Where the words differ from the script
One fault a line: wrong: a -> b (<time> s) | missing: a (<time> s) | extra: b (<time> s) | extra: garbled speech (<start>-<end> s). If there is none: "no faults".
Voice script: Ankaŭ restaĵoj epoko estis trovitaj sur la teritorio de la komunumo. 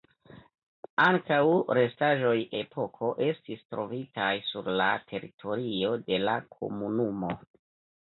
no faults